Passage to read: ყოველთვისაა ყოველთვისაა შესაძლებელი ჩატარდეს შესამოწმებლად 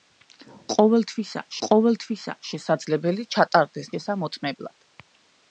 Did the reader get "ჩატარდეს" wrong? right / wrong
right